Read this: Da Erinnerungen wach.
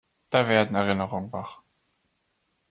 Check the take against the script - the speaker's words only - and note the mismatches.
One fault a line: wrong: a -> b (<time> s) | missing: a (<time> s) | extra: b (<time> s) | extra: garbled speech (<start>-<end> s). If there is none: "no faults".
extra: werden (0.5 s)